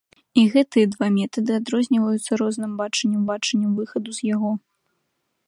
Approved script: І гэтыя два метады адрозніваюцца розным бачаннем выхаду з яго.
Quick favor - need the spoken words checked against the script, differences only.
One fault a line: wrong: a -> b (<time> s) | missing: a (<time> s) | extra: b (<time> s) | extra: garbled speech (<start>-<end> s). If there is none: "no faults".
extra: бачаннем (3.3 s)